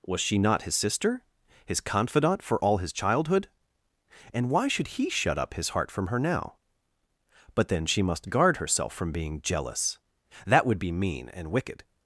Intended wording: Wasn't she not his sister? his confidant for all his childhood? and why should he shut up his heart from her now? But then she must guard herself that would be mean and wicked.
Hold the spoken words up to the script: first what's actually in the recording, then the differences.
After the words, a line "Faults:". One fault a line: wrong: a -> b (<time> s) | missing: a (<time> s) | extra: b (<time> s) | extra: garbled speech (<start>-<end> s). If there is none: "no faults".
Was she not his sister? his confidant for all his childhood? and why should he shut up his heart from her now? But then she must guard herself from being jealous, that would be mean and wicked.
Faults:
wrong: Wasn't -> Was (0.1 s)
extra: from being jealous (8.9 s)